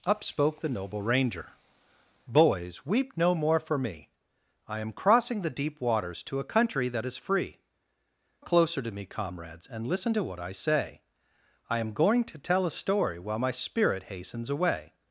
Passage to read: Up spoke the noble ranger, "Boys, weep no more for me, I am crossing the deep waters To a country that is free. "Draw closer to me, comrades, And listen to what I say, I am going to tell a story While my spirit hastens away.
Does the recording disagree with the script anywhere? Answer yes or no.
yes